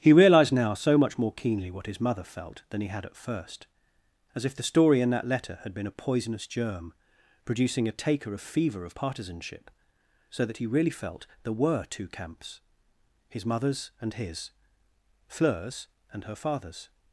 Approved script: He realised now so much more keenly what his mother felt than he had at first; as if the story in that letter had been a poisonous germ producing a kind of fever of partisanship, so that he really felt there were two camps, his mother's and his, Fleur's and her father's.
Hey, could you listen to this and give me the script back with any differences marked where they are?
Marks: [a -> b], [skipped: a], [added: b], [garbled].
He realised now so much more keenly what his mother felt than he had at first; as if the story in that letter had been a poisonous germ producing a [kind -> taker] of fever of partisanship, so that he really felt there were two camps, his mother's and his, Fleur's and her father's.